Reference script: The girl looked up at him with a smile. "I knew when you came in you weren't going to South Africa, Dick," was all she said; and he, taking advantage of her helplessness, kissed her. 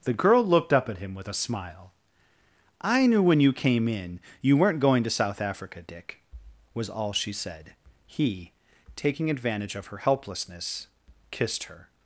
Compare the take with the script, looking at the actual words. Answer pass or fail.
fail